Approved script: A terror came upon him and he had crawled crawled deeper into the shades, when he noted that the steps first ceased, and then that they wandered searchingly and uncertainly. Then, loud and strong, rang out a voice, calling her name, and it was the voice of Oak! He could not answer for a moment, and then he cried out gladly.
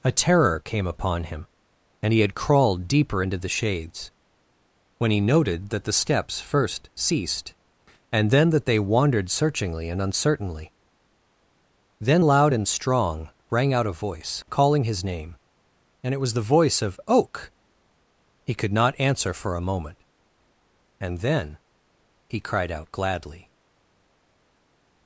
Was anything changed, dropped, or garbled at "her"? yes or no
yes